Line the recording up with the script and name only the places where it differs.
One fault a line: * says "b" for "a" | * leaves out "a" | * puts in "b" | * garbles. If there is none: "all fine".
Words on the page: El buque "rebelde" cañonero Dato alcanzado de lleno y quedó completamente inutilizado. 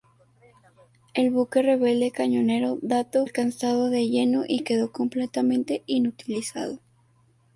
all fine